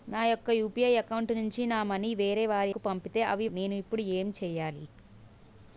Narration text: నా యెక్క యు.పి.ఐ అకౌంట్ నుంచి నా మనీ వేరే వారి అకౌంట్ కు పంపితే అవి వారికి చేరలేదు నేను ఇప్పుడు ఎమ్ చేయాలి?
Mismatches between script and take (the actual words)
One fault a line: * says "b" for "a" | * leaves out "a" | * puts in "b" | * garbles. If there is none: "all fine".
* leaves out "అకౌంట్"
* leaves out "వారికి చేరలేదు"